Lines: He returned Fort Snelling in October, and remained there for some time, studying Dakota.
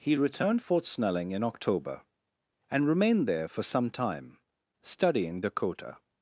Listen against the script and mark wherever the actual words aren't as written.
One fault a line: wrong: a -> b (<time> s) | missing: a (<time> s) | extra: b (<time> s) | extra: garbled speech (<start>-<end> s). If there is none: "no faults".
no faults